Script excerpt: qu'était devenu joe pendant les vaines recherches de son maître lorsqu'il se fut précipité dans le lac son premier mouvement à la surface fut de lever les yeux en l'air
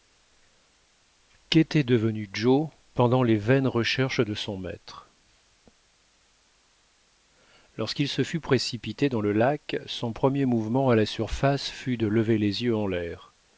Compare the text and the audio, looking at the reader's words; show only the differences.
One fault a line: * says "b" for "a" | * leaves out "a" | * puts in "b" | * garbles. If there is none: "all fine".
all fine